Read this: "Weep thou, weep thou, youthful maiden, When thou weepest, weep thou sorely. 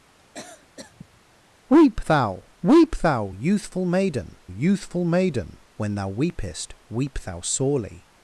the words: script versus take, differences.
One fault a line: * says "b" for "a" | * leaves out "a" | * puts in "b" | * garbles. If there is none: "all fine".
* puts in "youthful maiden"